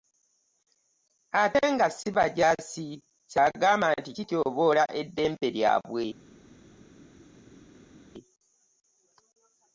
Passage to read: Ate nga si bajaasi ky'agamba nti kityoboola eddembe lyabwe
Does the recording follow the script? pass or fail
pass